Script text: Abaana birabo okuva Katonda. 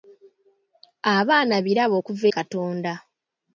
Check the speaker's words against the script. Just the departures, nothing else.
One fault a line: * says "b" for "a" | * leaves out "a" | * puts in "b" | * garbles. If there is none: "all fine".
all fine